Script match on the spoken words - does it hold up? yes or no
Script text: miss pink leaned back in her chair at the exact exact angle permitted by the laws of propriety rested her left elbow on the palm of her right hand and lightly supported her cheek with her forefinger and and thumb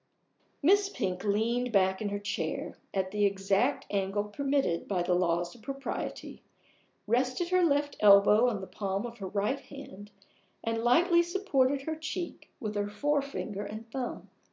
no